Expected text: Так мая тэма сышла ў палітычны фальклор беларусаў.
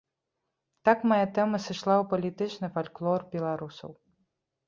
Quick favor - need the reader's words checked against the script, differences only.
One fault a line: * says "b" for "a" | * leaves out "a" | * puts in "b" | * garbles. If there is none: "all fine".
all fine